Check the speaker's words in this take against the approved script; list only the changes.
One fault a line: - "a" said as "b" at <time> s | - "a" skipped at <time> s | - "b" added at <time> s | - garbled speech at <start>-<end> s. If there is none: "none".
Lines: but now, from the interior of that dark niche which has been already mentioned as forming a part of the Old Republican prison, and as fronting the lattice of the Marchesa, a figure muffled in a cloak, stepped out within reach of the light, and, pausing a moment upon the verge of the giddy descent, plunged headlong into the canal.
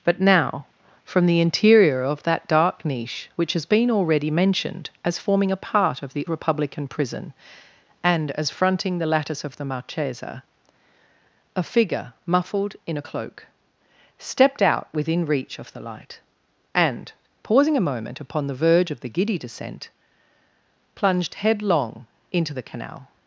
- "Old" skipped at 6.3 s